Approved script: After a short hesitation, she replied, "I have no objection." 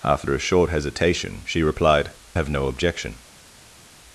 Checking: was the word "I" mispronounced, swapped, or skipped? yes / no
yes